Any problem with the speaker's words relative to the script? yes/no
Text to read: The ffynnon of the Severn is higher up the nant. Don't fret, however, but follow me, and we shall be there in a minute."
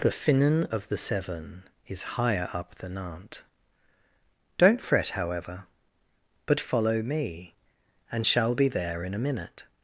yes